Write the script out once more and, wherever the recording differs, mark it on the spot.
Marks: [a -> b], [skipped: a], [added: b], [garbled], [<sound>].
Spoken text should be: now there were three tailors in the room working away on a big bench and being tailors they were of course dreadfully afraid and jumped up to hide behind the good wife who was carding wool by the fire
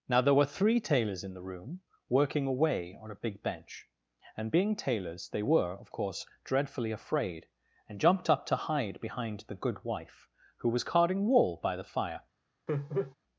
now there were three tailors in the room working away on a big bench and being tailors they were of course dreadfully afraid and jumped up to hide behind the good wife who was carding wool by the fire [laugh]